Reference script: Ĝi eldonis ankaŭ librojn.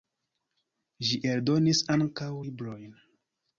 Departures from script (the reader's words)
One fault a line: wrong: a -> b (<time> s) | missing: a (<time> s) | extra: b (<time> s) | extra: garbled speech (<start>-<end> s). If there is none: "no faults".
no faults